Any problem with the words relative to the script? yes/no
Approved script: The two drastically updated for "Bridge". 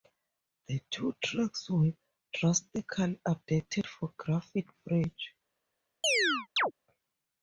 yes